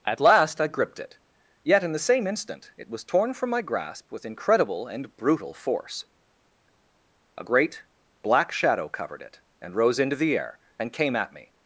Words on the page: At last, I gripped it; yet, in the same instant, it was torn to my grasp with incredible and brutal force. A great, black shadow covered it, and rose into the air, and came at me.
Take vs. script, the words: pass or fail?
fail